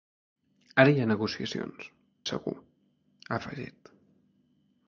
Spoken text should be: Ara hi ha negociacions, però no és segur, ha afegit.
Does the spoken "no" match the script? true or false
false